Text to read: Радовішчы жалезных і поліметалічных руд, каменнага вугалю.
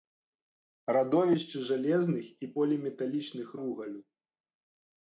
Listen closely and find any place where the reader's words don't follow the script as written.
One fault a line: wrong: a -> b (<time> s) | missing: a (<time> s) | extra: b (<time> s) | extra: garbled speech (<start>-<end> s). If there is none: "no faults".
missing: руд каменнага (3.5 s)